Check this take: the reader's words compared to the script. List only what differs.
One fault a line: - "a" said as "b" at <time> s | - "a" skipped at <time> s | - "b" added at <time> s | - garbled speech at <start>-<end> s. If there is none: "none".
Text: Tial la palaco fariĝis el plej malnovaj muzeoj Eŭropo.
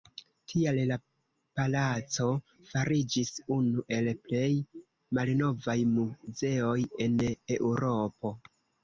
- "unu" added at 3.6 s
- "en" added at 7.1 s